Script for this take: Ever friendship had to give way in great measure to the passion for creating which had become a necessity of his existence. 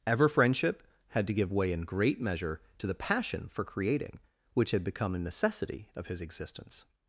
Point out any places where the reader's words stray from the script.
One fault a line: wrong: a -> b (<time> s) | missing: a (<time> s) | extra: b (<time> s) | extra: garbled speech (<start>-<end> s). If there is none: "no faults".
no faults